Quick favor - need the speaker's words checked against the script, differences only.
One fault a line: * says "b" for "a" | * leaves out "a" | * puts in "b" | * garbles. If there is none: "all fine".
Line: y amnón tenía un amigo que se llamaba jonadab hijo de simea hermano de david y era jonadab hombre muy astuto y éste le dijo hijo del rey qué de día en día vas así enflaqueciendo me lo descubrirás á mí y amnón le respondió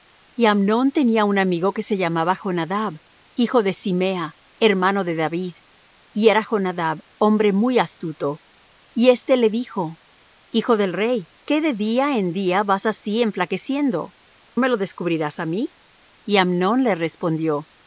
all fine